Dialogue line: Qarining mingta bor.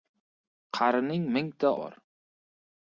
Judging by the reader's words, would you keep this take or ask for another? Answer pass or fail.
pass